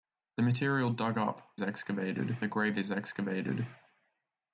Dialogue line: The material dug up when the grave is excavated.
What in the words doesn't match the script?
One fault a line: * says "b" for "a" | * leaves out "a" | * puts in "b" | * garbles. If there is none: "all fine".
* says "excavated" for "when"